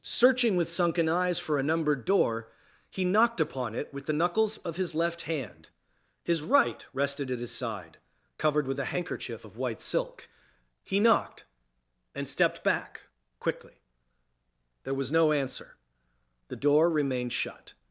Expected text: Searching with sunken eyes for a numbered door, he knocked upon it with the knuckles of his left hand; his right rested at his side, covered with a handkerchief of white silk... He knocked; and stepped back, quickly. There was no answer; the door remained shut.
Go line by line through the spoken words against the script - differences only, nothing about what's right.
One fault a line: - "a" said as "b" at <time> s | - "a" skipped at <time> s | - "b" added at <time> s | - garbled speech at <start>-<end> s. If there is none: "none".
none